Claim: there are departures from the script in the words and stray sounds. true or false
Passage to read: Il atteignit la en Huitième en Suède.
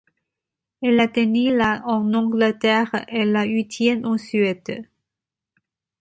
true